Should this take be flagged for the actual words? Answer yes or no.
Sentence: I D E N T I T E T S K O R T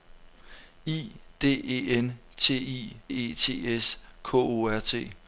yes